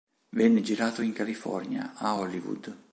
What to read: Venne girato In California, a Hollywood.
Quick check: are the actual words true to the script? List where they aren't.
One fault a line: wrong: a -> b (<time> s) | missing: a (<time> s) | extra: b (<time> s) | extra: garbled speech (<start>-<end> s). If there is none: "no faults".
no faults